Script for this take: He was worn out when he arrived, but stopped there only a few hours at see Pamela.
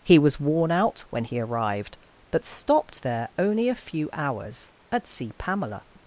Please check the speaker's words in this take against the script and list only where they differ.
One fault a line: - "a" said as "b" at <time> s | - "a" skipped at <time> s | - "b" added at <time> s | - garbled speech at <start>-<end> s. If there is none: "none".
none